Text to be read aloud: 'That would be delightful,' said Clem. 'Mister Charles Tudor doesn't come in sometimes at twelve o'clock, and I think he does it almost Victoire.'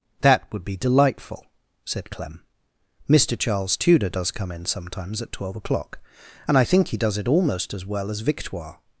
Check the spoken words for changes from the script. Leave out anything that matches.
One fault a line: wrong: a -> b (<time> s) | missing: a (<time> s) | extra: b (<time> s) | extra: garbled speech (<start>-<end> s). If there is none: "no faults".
wrong: doesn't -> does (4.1 s)
extra: as well as (7.7 s)